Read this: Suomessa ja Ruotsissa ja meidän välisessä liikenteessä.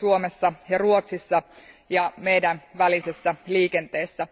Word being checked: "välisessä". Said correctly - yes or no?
yes